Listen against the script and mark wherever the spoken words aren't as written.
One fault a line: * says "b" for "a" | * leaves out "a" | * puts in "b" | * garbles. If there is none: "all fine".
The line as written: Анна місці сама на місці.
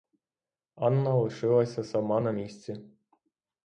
* says "лишилася" for "місці"